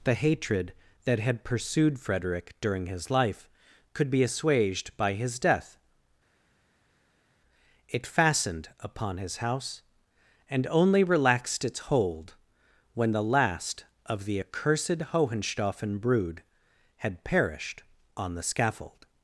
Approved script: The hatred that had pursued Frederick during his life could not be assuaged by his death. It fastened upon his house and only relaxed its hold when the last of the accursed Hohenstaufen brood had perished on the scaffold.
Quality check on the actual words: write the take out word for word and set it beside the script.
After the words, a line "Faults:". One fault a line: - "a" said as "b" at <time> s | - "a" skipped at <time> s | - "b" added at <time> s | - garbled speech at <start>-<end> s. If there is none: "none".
The hatred that had pursued Frederick during his life could be assuaged by his death. It fastened upon his house and only relaxed its hold when the last of the accursed Hohenstaufen brood had perished on the scaffold.
Faults:
- "not" skipped at 4.1 s